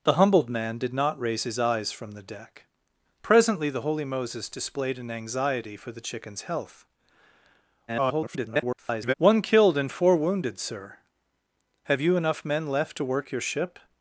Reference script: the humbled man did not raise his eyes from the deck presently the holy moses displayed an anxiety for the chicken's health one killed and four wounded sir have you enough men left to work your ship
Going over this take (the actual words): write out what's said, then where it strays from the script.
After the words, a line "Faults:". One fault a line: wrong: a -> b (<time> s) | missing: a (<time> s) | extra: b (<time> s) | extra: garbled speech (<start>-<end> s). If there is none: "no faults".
the humbled man did not raise his eyes from the deck presently the holy moses displayed an anxiety for the chicken's health [garbled] one killed and four wounded sir have you enough men left to work your ship
Faults:
extra: garbled speech (7.9-9.1 s)